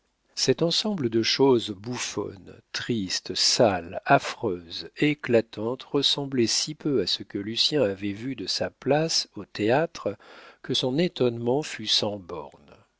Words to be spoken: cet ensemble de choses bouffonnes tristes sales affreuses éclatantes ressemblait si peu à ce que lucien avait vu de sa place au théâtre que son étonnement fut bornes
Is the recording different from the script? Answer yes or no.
yes